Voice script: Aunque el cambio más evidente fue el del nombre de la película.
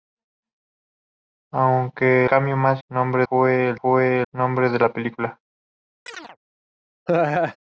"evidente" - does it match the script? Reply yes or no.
no